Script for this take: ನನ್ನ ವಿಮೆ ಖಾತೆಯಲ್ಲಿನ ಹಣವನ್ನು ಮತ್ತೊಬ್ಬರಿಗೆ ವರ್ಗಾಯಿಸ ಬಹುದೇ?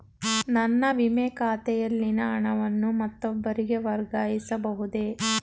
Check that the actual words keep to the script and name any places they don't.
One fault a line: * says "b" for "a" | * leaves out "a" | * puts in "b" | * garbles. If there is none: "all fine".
all fine